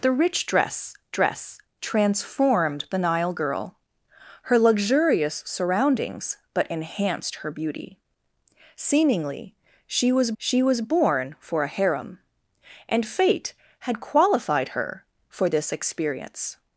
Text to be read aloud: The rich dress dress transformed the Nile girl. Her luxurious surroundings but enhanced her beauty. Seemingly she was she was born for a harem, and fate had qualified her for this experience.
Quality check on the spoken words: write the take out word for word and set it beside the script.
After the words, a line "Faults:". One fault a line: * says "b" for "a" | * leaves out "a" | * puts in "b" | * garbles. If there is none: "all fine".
The rich dress dress transformed the Nile girl. Her luxurious surroundings but enhanced her beauty. Seemingly she was she was born for a harem, and fate had qualified her for this experience.
Faults:
all fine